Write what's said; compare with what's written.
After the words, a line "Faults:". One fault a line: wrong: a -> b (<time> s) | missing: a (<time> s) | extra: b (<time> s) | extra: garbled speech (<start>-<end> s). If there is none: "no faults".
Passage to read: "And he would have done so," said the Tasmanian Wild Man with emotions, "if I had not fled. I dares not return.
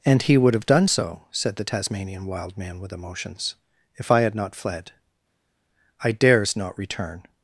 "And he would have done so," said the Tasmanian Wild Man with emotions, "if I had not fled. I dares not return.
Faults:
no faults